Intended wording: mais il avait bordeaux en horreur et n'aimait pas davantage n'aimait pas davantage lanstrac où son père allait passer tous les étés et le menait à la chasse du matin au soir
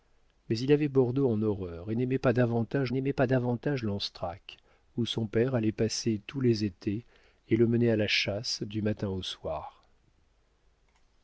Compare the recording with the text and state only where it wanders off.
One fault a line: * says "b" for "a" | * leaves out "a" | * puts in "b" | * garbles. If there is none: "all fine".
all fine